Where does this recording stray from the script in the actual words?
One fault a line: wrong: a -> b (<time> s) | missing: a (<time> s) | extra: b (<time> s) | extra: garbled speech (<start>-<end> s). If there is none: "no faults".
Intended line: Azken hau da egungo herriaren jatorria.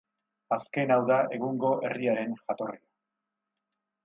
no faults